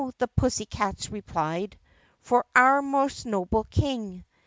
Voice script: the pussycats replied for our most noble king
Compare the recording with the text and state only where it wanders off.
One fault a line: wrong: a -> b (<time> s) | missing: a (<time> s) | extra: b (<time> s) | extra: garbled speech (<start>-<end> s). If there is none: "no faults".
no faults